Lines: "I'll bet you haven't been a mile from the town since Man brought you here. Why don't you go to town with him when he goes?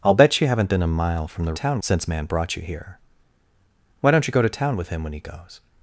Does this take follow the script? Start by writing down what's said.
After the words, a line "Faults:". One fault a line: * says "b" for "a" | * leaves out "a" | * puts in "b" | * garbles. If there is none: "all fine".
"I'll bet you haven't been a mile from the town since Man brought you here. Why don't you go to town with him when he goes?
Faults:
all fine